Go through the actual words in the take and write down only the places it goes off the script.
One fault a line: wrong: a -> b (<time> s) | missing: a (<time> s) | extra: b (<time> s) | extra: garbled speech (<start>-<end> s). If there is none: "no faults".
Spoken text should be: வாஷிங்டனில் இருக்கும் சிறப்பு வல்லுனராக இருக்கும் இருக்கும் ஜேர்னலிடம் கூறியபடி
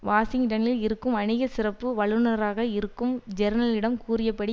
extra: வணிக (1.1 s)
missing: இருக்கும் (3.1 s)